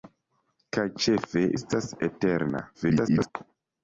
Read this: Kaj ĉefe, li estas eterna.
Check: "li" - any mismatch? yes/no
yes